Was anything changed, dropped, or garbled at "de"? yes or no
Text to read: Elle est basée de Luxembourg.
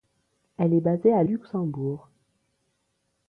yes